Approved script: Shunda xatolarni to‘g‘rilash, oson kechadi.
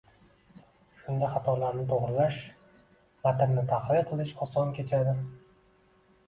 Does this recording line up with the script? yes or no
no